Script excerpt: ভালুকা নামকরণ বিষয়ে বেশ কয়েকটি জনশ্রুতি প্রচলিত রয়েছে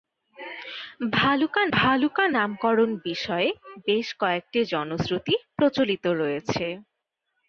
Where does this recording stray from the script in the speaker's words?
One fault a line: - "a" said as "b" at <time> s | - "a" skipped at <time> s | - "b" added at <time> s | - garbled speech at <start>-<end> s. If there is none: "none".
- "ভালুকা" added at 1.7 s